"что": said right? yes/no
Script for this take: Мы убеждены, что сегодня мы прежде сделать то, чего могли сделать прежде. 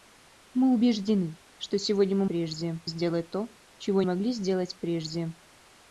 yes